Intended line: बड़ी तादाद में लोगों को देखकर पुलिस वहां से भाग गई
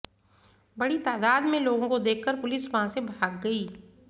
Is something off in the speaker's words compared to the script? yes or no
no